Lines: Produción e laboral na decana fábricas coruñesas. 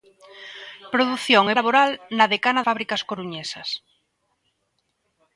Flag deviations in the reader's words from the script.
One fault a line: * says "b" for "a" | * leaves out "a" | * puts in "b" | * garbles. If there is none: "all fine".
all fine